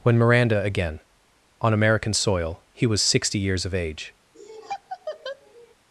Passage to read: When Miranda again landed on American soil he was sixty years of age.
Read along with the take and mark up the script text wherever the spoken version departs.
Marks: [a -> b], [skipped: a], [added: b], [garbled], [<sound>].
When Miranda again [skipped: landed] on American soil he was sixty years of age. [laugh]